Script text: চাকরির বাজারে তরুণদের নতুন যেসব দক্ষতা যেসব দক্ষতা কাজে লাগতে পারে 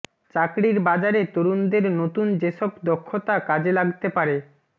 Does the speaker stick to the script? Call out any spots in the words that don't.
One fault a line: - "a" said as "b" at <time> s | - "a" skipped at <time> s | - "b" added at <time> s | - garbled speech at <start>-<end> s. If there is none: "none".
- "যেসব দক্ষতা" skipped at 3.4 s